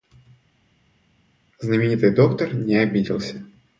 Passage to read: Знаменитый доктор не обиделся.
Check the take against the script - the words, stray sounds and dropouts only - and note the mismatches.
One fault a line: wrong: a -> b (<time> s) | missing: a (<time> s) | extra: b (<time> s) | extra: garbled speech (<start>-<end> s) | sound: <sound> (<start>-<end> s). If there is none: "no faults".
no faults